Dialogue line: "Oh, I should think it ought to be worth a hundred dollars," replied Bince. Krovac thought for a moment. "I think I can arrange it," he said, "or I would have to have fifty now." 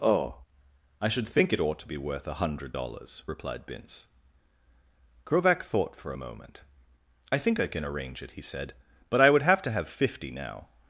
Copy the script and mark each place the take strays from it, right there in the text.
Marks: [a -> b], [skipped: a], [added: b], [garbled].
"Oh, I should think it ought to be worth a hundred dollars," replied Bince. Krovac thought for a moment. "I think I can arrange it," he said, ["or -> but] I would have to have fifty now."